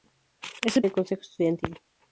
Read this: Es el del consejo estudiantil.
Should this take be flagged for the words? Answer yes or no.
no